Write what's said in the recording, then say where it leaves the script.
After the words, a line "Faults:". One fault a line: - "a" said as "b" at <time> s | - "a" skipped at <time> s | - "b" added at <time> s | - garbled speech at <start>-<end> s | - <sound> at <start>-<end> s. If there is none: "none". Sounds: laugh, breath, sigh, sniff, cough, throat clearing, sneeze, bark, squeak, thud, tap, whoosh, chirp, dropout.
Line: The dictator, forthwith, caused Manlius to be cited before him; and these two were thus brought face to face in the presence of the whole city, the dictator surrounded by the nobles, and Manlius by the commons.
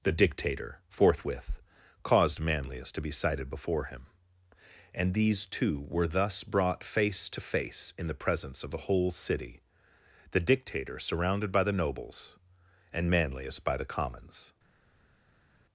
The dictator, forthwith, caused Manlius to be cited before him; and these two were thus brought face to face in the presence of the whole city, the dictator surrounded by the nobles, and Manlius by the commons.
Faults:
none